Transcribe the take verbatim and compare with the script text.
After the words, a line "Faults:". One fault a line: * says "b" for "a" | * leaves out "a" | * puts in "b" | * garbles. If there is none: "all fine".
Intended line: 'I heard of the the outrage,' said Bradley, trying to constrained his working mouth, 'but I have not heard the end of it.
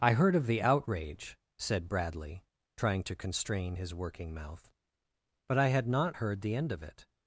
'I heard of the outrage,' said Bradley, trying to constrain his working mouth, 'but I had not heard the end of it.
Faults:
* leaves out "the"
* says "constrain" for "constrained"
* says "had" for "have"